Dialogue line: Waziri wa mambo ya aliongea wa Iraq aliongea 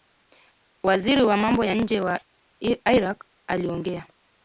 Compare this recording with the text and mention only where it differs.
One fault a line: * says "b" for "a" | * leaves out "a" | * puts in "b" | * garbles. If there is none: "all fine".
* says "nje" for "aliongea"